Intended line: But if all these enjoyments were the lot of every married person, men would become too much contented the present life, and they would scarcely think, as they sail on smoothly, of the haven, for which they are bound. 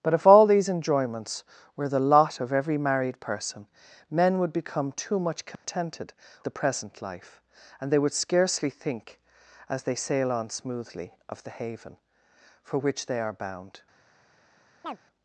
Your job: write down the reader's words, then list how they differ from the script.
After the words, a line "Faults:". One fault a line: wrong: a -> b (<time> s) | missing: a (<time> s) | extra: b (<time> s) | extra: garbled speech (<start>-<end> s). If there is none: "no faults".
But if all these enjoyments were the lot of every married person, men would become too much contented the present life, and they would scarcely think, as they sail on smoothly, of the haven, for which they are bound.
Faults:
no faults